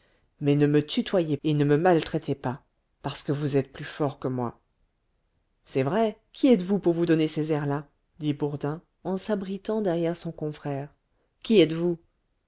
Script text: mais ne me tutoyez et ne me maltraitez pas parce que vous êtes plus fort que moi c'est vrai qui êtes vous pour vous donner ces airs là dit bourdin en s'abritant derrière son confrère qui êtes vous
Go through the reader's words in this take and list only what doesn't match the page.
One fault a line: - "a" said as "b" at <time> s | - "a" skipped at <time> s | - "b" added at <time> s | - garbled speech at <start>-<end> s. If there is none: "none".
none